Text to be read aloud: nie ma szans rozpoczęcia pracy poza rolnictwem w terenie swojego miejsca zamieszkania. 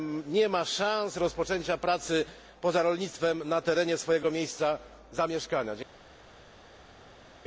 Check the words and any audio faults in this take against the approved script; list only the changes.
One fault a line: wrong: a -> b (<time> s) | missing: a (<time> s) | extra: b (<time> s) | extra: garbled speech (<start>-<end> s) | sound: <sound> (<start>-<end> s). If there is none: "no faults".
wrong: w -> na (3.5 s)